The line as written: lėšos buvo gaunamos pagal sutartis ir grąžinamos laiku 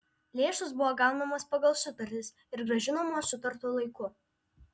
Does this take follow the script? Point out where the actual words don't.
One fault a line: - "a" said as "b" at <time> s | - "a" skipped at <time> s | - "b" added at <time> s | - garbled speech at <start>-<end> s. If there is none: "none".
- "sutartu" added at 3.3 s